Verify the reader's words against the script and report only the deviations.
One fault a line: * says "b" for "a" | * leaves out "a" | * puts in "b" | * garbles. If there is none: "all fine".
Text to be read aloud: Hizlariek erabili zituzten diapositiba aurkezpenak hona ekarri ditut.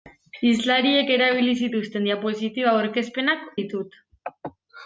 * leaves out "hona ekarri"